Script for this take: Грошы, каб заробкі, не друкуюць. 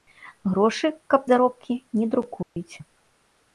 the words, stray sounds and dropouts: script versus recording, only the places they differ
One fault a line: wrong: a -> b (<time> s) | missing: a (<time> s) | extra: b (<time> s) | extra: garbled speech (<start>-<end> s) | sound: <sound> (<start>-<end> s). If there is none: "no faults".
sound: dropout (2.4-2.6 s)